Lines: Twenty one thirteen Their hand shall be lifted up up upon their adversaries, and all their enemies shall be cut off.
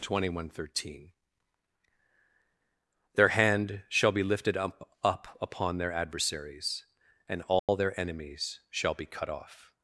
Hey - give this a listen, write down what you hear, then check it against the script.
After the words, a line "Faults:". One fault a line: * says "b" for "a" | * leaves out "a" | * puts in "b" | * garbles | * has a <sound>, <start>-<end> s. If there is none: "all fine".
Twenty one thirteen Their hand shall be lifted up up upon their adversaries, and all their enemies shall be cut off.
Faults:
* has a dropout, 7.6-7.7 s